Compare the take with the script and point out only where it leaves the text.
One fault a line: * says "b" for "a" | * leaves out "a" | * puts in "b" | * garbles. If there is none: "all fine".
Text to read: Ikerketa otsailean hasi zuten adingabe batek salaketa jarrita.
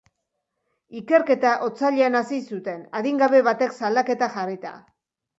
all fine